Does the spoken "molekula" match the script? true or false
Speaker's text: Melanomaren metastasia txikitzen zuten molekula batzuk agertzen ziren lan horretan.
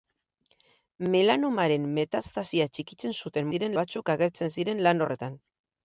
false